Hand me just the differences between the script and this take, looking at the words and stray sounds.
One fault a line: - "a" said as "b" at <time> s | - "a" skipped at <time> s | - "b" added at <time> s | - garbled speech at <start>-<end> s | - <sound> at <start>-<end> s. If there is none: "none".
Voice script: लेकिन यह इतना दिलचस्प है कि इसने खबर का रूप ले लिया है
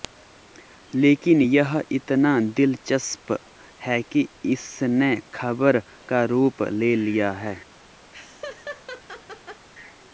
- laugh at 8.1-9.7 s